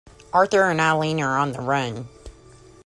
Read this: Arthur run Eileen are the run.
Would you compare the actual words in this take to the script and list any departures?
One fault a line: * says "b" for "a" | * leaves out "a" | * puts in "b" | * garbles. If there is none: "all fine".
* says "and" for "run"
* puts in "on"